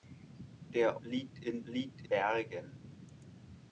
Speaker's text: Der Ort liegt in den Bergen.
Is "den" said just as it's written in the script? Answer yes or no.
no